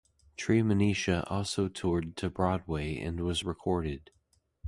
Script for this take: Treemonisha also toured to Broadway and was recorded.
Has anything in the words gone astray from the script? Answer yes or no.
no